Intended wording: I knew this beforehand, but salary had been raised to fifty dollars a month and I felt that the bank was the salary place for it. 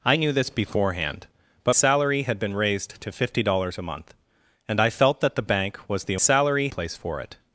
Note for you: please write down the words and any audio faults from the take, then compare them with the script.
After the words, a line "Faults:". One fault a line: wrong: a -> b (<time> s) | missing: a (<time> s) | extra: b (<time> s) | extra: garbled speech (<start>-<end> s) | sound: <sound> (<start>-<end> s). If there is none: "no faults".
I knew this beforehand, but salary had been raised to fifty dollars a month and I felt that the bank was the salary place for it.
Faults:
no faults